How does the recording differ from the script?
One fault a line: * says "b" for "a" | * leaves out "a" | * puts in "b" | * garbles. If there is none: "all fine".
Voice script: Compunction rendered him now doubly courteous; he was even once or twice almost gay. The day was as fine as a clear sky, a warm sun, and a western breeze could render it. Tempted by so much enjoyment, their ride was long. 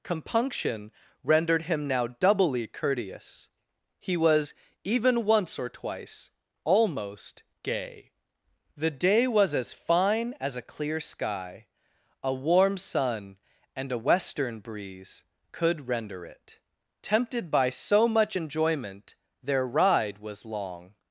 all fine